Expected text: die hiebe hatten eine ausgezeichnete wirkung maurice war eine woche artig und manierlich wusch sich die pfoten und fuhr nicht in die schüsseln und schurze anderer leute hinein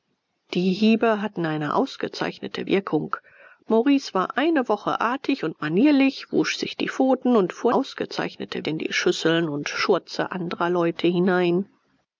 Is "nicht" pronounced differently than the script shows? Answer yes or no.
yes